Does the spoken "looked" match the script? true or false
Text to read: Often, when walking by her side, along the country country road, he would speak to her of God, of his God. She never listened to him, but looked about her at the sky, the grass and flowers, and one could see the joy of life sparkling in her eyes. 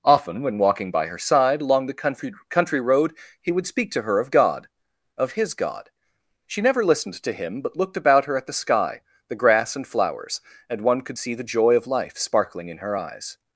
true